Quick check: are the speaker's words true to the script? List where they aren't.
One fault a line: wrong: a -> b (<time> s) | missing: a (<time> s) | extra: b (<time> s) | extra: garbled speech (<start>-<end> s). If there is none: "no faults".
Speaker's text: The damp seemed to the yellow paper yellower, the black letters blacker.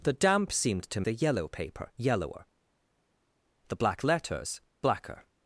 no faults